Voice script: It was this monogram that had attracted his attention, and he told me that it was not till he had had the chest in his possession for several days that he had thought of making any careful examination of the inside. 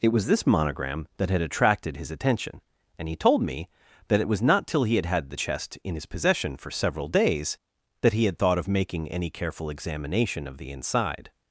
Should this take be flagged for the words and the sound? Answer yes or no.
no